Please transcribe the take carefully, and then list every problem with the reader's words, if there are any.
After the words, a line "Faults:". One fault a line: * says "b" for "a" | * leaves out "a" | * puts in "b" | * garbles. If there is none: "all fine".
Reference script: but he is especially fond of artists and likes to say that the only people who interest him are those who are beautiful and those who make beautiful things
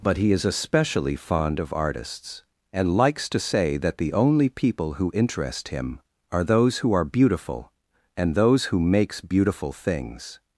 but he is especially fond of artists and likes to say that the only people who interest him are those who are beautiful and those who makes beautiful things
Faults:
* says "makes" for "make"